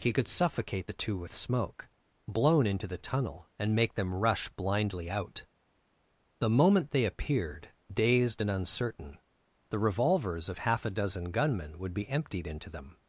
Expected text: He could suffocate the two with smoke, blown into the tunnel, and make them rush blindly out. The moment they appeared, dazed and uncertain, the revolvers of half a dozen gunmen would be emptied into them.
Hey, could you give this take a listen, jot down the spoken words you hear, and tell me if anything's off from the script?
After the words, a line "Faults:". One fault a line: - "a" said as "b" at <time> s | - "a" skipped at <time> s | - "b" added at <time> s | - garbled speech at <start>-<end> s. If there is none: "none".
He could suffocate the two with smoke, blown into the tunnel, and make them rush blindly out. The moment they appeared, dazed and uncertain, the revolvers of half a dozen gunmen would be emptied into them.
Faults:
none